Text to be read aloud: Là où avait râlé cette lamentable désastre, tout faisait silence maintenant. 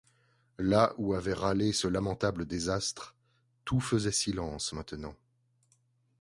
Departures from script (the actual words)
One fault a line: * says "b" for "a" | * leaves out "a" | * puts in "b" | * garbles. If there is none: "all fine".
* says "ce" for "cette"